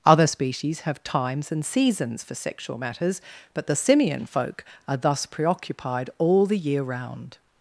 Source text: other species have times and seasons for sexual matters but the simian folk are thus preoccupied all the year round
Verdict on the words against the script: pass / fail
pass